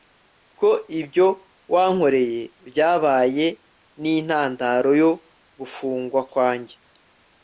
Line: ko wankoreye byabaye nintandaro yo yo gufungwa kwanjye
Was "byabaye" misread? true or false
false